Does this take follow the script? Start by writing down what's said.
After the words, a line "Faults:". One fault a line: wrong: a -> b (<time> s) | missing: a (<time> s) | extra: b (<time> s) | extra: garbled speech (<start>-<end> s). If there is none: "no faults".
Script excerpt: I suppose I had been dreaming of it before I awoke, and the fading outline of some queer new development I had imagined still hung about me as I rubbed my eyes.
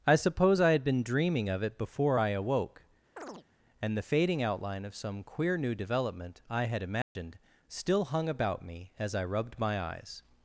I suppose I had been dreaming of it before I awoke, and the fading outline of some queer new development I had imagined still hung about me as I rubbed my eyes.
Faults:
no faults